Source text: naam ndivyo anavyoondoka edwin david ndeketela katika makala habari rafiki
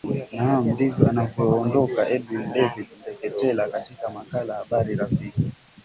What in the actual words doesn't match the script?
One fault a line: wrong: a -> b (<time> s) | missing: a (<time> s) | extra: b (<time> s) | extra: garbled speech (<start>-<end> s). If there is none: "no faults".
no faults